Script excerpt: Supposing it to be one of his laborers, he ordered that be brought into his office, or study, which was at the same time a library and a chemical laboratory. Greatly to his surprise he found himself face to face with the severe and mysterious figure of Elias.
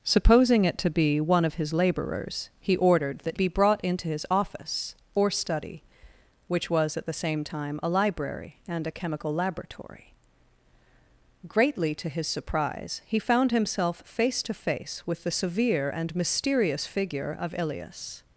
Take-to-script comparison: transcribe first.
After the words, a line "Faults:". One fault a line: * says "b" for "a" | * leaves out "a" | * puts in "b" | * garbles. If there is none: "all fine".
Supposing it to be one of his laborers, he ordered that be brought into his office, or study, which was at the same time a library and a chemical laboratory. Greatly to his surprise he found himself face to face with the severe and mysterious figure of Elias.
Faults:
all fine